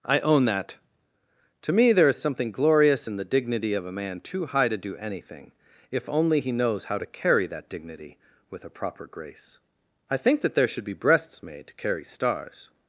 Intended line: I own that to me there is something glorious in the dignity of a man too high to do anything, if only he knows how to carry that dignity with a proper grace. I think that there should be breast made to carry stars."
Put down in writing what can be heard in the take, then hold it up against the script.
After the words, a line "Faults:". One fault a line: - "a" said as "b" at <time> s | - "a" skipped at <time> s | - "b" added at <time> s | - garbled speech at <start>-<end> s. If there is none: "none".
I own that to me there is something glorious in the dignity of a man too high to do anything, if only he knows how to carry that dignity with a proper grace. I think that there should be breasts made to carry stars."
Faults:
- "breast" said as "breasts" at 10.9 s